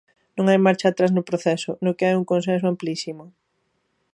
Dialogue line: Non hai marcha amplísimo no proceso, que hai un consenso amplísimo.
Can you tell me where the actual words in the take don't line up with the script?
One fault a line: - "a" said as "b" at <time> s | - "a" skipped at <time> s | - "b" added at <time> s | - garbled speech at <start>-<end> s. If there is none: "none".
- "amplísimo" said as "atrás" at 0.9 s
- "no" added at 1.8 s